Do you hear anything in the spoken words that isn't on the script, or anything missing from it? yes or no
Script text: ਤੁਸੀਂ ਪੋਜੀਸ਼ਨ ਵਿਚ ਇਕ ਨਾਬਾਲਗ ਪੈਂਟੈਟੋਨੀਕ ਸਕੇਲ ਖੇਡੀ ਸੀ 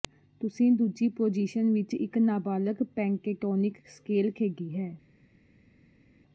yes